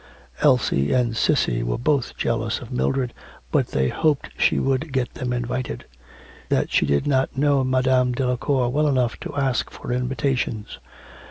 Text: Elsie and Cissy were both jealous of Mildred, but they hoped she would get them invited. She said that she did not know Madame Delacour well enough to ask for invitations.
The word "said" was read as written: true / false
false